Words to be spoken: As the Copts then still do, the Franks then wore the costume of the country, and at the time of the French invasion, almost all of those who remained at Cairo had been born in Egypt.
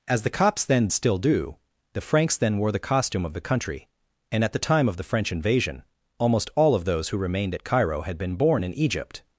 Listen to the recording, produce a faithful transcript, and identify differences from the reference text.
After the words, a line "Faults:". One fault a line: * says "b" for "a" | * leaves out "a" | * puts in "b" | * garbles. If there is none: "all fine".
As the Copts then still do, the Franks then wore the costume of the country, and at the time of the French invasion, almost all of those who remained at Cairo had been born in Egypt.
Faults:
all fine